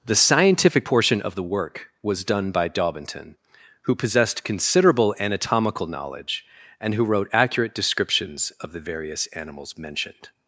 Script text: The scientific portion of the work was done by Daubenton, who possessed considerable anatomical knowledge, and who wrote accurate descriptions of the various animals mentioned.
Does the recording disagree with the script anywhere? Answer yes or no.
no